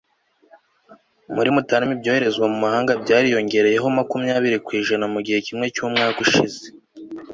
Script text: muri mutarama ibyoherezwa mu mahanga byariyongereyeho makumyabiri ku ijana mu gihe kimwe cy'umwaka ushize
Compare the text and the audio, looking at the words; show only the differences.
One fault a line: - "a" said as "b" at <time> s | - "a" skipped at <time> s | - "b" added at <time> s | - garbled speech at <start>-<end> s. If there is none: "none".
none